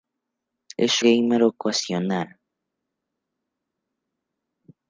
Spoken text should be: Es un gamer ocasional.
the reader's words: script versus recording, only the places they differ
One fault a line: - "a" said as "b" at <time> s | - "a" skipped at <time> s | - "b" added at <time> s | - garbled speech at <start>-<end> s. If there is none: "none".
- "un" skipped at 1.0 s